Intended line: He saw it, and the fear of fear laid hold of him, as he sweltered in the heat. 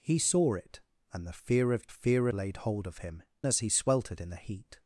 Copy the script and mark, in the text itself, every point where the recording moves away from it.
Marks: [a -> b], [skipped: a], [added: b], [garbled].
He saw it, and the fear of fear laid hold of him, as he sweltered in the heat.